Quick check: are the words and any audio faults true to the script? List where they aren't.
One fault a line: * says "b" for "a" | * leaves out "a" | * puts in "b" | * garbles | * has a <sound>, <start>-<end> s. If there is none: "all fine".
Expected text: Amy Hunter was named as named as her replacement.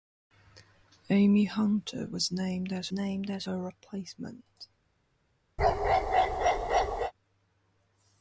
* has a bark, 5.6-7.1 s